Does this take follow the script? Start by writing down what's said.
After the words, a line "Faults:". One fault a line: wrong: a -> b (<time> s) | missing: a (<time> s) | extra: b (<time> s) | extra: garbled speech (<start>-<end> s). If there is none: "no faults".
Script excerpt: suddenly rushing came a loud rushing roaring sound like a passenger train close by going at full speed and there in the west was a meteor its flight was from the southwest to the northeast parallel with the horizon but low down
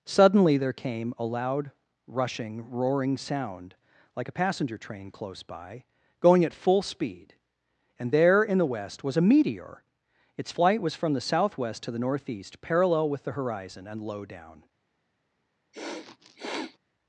suddenly there came a loud rushing roaring sound like a passenger train close by going at full speed and there in the west was a meteor its flight was from the southwest to the northeast parallel with the horizon and low down
Faults:
wrong: rushing -> there (0.6 s)
wrong: but -> and (13.9 s)